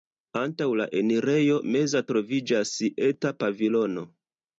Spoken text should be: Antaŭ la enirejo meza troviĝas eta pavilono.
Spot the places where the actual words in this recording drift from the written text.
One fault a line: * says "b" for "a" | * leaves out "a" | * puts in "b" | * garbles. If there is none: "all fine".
all fine